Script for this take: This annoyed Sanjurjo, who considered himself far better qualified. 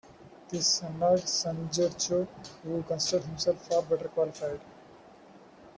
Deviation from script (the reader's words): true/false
false